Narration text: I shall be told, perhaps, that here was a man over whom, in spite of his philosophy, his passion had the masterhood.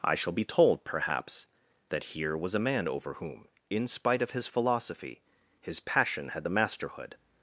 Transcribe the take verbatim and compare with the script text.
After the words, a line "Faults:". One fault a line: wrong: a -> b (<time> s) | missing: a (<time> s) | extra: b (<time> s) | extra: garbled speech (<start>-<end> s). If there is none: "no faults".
I shall be told, perhaps, that here was a man over whom, in spite of his philosophy, his passion had the masterhood.
Faults:
no faults